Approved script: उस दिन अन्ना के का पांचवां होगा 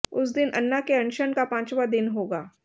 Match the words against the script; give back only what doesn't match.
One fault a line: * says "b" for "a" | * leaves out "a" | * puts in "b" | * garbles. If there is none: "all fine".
* puts in "अनशन"
* puts in "दिन"